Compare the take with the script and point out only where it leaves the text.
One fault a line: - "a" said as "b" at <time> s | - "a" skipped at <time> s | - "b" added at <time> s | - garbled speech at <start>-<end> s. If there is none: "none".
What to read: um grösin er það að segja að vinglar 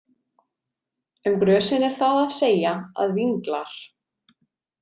none